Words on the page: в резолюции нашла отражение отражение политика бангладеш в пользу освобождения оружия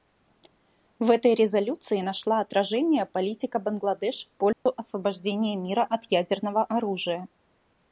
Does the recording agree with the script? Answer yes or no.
no